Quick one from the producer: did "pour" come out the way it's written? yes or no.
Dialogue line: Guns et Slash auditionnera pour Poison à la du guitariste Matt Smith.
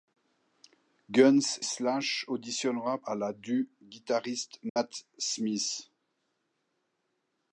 no